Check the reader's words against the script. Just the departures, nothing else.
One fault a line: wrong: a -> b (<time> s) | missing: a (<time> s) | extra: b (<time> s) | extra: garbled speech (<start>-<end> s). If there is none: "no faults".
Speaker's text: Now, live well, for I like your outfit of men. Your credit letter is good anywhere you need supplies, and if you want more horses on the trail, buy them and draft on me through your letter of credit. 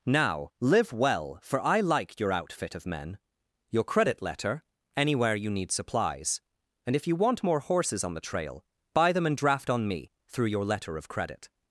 missing: is good (4.6 s)